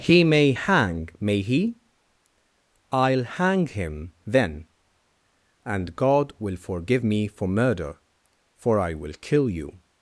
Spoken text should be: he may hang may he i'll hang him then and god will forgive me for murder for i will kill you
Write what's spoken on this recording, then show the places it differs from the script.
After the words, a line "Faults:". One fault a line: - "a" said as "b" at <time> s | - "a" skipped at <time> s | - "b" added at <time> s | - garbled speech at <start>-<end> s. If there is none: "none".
he may hang may he i'll hang him then and god will forgive me for murder for i will kill you
Faults:
none